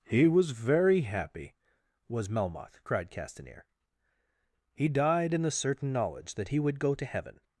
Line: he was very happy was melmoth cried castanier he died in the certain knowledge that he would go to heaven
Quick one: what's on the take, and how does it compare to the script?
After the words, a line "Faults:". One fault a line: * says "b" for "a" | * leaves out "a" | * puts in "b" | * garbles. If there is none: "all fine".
he was very happy was melmoth cried castanier he died in the certain knowledge that he would go to heaven
Faults:
all fine